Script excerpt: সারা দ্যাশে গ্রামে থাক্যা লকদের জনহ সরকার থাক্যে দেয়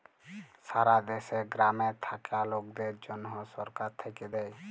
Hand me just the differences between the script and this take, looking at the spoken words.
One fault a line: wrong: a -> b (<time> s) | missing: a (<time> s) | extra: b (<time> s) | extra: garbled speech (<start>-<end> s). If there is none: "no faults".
no faults